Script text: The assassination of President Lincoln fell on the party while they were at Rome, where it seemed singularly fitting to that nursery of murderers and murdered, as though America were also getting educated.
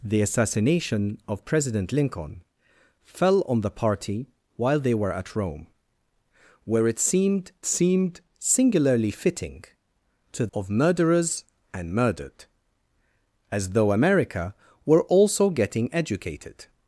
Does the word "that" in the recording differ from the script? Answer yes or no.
yes